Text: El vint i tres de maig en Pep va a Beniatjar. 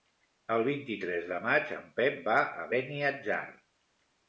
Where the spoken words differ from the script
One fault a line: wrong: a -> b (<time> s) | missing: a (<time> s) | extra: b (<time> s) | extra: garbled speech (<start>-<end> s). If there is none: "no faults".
no faults